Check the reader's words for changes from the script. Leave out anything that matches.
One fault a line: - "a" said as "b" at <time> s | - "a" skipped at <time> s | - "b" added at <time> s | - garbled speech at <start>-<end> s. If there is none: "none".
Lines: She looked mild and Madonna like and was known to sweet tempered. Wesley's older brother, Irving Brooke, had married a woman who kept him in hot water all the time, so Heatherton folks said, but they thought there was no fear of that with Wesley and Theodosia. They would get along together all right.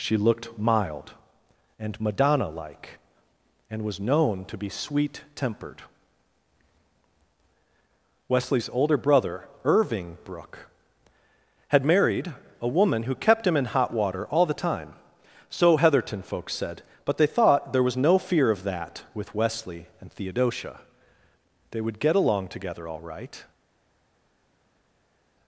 - "be" added at 4.6 s